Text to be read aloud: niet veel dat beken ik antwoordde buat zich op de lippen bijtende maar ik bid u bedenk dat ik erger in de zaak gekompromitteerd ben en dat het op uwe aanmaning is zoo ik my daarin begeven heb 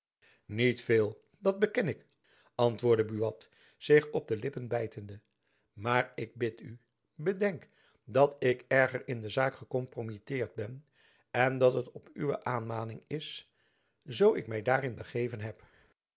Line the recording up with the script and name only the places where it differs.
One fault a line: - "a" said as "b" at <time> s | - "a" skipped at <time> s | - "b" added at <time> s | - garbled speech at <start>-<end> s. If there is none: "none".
none